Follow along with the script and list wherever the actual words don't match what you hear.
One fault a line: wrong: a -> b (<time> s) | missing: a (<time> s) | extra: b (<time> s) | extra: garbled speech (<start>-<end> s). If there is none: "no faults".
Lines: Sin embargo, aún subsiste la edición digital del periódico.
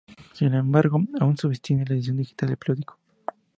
no faults